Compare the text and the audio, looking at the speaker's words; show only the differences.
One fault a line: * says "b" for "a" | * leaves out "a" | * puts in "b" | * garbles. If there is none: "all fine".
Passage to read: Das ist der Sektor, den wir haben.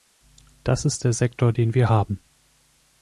all fine